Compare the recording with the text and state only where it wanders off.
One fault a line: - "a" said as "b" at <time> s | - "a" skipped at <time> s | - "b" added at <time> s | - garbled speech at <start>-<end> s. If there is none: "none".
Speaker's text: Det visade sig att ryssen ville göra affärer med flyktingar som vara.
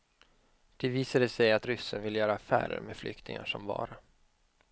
none